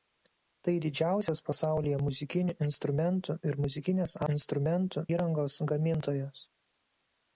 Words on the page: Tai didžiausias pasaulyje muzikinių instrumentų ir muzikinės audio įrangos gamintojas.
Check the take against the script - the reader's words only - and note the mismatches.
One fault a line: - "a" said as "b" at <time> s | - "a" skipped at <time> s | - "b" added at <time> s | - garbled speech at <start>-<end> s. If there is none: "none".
- "audio" said as "instrumentų" at 4.3 s